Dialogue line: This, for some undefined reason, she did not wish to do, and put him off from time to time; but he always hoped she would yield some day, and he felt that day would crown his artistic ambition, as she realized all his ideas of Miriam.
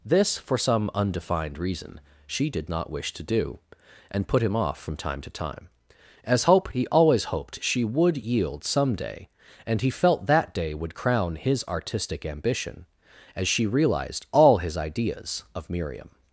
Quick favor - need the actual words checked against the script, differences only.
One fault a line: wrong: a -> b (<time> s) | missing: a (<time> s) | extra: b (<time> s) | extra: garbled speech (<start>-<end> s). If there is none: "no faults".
wrong: but -> as hope (6.2 s)